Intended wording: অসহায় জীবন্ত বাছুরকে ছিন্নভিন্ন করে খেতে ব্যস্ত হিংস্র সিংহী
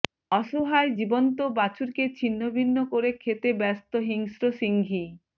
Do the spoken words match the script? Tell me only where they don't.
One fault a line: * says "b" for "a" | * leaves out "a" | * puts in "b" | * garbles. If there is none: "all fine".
all fine